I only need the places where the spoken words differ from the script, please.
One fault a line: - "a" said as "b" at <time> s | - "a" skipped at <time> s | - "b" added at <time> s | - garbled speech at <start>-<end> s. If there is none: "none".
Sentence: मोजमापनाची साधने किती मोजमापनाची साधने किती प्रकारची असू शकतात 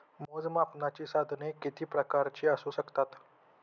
- "मोजमापनाची साधने किती" skipped at 1.8 s